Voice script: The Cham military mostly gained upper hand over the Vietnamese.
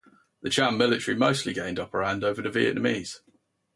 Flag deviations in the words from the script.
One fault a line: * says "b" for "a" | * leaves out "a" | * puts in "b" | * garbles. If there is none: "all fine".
all fine